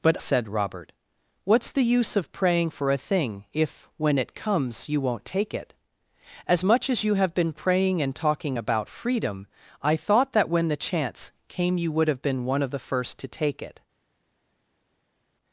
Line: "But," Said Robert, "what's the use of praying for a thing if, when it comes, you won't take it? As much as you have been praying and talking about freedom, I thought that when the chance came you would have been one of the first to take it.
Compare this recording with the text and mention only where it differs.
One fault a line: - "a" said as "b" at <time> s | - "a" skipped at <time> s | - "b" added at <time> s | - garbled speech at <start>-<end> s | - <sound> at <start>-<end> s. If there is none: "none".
none